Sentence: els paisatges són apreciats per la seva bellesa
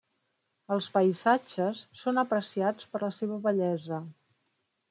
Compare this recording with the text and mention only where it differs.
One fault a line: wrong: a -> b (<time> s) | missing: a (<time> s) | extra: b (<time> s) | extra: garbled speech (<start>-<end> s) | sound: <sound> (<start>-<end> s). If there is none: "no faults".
no faults